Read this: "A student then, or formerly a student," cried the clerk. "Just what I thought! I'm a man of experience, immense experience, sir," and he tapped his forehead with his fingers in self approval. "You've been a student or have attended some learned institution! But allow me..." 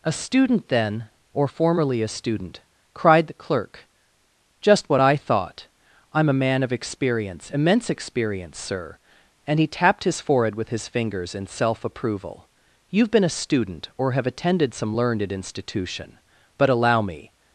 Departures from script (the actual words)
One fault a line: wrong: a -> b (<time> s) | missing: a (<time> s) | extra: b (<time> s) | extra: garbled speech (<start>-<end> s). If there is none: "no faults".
no faults